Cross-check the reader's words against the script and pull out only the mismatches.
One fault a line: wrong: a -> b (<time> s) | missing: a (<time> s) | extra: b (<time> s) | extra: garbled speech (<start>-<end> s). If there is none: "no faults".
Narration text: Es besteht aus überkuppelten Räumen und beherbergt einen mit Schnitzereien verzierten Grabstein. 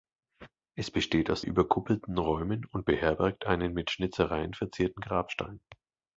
no faults